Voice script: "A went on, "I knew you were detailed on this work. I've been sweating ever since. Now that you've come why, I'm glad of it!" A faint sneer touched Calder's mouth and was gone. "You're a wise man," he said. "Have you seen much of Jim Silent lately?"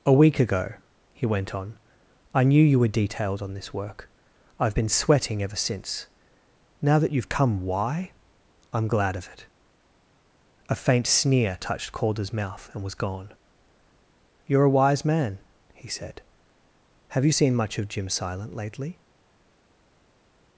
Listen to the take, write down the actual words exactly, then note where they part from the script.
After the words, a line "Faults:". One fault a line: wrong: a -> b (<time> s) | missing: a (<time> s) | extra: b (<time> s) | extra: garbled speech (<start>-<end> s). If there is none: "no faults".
"A week ago," he went on, "I knew you were detailed on this work. I've been sweating ever since. Now that you've come why, I'm glad of it!" A faint sneer touched Calder's mouth and was gone. "You're a wise man," he said. "Have you seen much of Jim Silent lately?"
Faults:
extra: week ago he (0.1 s)